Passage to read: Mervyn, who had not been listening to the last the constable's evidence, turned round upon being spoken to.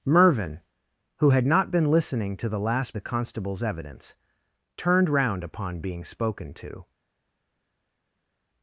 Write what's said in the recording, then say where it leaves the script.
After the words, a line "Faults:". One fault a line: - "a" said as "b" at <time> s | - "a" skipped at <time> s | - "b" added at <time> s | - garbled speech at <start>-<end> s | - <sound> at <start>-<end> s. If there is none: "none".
Mervyn, who had not been listening to the last the constable's evidence, turned round upon being spoken to.
Faults:
none